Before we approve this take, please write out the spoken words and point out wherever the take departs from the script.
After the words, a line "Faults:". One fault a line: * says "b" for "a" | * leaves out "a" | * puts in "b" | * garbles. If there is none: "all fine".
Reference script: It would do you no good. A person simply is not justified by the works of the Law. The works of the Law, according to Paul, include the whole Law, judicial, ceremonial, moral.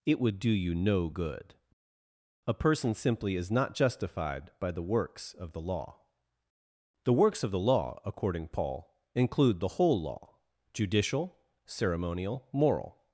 It would do you no good. A person simply is not justified by the works of the Law. The works of the Law, according Paul, include the whole Law, judicial, ceremonial, moral.
Faults:
* leaves out "to"